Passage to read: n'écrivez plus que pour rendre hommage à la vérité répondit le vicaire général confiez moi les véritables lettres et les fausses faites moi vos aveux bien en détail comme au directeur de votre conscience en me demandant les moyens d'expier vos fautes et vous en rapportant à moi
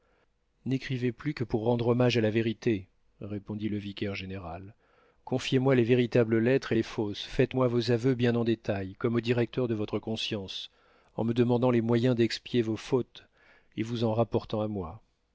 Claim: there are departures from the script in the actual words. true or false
false